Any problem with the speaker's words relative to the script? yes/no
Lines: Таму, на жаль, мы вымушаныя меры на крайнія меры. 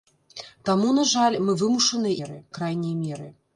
no